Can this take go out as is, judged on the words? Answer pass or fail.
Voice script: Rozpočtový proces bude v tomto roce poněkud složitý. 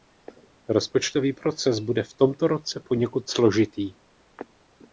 pass